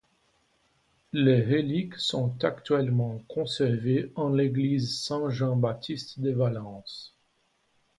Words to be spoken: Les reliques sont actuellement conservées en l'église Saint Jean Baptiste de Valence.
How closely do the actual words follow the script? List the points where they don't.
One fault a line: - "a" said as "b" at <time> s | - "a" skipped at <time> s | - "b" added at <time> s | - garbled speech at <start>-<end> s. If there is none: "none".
none